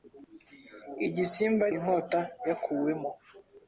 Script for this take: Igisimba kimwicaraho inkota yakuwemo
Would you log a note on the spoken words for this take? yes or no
yes